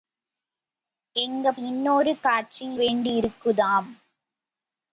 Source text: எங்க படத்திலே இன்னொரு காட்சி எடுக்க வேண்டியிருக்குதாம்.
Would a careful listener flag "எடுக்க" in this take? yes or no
yes